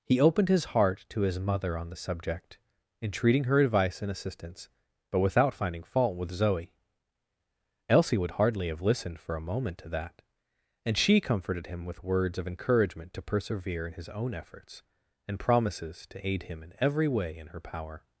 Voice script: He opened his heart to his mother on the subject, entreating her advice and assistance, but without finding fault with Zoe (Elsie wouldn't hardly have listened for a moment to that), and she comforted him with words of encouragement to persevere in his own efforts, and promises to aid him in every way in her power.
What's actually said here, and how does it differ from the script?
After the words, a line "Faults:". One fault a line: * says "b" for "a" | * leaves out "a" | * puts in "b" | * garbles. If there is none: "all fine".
He opened his heart to his mother on the subject, entreating her advice and assistance, but without finding fault with Zoe (Elsie would hardly have listened for a moment to that), and she comforted him with words of encouragement to persevere in his own efforts, and promises to aid him in every way in her power.
Faults:
* says "would" for "wouldn't"